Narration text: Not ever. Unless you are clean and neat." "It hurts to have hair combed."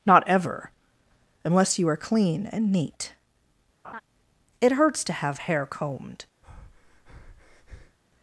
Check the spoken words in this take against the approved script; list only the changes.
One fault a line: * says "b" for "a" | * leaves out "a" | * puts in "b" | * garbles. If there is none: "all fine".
all fine